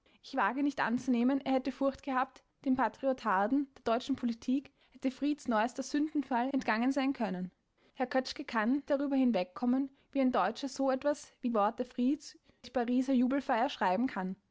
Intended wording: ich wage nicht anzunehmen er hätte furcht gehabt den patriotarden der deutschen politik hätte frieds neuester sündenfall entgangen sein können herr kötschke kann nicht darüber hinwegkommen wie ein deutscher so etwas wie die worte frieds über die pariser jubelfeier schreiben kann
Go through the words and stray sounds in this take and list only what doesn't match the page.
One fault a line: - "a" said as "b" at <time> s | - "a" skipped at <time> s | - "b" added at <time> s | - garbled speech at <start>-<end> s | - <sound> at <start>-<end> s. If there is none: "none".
- "nicht" skipped at 8.8 s
- "die" skipped at 11.5 s
- "über" skipped at 12.4 s